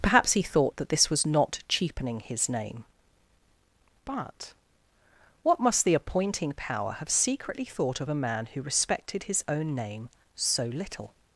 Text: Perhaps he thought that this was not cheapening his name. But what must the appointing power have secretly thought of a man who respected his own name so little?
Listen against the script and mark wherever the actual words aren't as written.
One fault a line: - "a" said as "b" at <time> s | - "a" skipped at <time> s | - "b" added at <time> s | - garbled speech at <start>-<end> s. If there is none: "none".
none